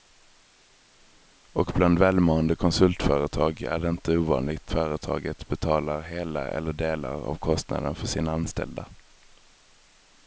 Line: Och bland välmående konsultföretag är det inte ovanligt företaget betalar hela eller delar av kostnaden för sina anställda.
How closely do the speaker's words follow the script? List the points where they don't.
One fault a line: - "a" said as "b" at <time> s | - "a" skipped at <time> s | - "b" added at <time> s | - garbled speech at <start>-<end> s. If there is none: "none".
none